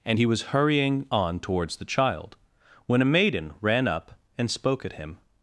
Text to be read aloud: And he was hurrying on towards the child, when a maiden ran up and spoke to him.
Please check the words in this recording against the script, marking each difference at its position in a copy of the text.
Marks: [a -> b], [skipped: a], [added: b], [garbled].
And he was hurrying on towards the child, when a maiden ran up and spoke [to -> at] him.